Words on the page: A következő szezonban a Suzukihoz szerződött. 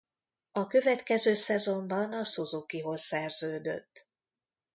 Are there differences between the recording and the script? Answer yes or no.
no